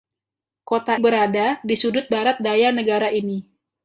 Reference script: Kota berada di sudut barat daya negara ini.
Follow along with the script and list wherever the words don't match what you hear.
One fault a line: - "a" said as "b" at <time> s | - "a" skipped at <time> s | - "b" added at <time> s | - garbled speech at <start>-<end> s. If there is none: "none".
none